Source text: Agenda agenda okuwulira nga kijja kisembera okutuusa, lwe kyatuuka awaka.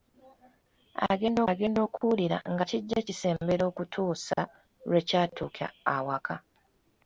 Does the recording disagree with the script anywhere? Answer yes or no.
no